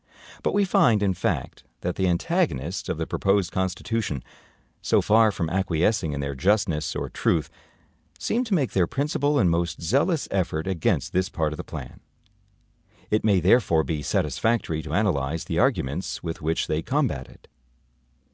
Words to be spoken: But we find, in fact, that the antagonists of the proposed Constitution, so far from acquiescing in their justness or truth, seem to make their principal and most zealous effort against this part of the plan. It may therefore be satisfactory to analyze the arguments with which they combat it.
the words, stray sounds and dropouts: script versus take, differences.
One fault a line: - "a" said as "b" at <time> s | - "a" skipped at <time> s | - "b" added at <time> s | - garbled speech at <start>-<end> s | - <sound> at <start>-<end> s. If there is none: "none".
none